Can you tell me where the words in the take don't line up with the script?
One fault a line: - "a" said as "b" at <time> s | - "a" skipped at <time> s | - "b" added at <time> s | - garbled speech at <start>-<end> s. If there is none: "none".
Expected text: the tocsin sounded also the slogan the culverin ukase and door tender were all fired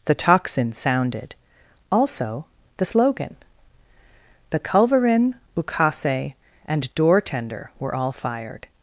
none